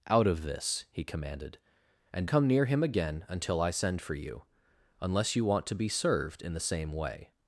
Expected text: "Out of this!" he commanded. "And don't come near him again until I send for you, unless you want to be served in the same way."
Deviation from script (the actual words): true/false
true